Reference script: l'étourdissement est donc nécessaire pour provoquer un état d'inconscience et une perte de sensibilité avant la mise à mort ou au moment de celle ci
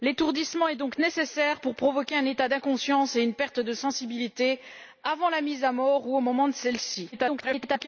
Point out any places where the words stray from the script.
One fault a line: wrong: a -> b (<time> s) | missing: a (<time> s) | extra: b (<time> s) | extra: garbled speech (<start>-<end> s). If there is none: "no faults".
extra: garbled speech (7.1-7.9 s)